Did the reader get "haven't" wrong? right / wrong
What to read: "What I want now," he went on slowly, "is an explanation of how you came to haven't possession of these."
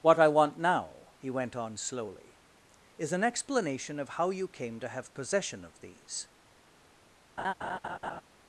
wrong